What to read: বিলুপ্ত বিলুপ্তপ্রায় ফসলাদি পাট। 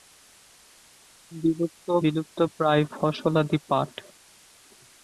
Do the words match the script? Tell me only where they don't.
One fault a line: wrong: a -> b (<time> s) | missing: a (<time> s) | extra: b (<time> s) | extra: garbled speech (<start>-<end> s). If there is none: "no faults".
no faults